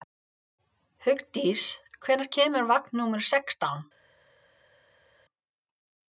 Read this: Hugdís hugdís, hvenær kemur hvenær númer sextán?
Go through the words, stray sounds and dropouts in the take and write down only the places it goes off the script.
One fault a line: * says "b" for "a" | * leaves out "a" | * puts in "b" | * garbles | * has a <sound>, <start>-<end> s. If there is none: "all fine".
* leaves out "hugdís"
* says "vagn" for "hvenær"